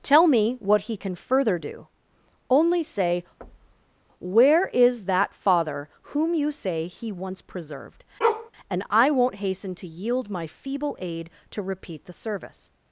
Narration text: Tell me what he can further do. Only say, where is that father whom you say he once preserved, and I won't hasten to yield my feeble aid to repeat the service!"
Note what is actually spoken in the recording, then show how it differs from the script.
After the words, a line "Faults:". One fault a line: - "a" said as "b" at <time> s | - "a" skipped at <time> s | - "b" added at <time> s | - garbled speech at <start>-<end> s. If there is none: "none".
Tell me what he can further do. Only say, where is that father whom you say he once preserved, and I won't hasten to yield my feeble aid to repeat the service!"
Faults:
none